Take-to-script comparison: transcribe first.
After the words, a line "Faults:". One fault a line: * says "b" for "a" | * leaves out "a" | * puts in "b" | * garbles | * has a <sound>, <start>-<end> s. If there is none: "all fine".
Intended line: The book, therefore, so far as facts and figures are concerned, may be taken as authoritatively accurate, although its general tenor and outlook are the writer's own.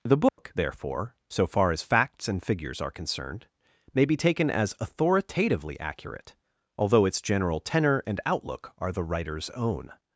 The book, therefore, so far as facts and figures are concerned, may be taken as authoritatively accurate, although its general tenor and outlook are the writer's own.
Faults:
* has a dropout, 0.3-0.4 s